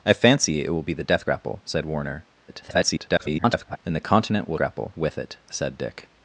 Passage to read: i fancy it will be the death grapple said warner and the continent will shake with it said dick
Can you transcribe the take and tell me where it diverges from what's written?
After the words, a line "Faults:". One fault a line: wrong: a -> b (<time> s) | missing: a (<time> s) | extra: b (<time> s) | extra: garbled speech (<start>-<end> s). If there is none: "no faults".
i fancy it will be the death grapple said warner [garbled] and the continent will grapple with it said dick
Faults:
extra: garbled speech (2.5-3.8 s)
wrong: shake -> grapple (4.6 s)